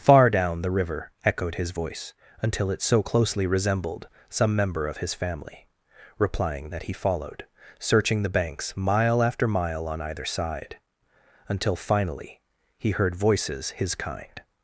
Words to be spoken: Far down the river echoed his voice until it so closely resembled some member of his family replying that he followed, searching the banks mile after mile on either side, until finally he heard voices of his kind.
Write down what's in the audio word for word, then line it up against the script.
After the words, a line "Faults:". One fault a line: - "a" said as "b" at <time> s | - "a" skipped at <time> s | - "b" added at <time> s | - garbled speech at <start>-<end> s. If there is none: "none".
Far down the river echoed his voice until it so closely resembled some member of his family replying that he followed, searching the banks mile after mile on either side, until finally he heard voices his kind.
Faults:
- "of" skipped at 13.7 s